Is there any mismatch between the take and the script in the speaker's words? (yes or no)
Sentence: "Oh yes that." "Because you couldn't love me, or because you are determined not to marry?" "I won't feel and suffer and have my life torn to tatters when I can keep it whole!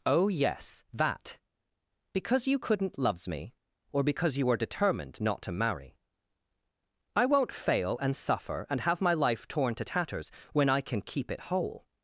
yes